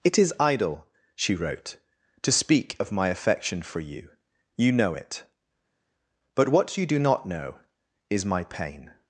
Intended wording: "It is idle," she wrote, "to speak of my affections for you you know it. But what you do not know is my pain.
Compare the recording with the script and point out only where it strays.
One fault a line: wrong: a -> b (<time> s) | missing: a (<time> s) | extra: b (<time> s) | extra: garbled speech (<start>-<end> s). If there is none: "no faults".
wrong: affections -> affection (3.1 s)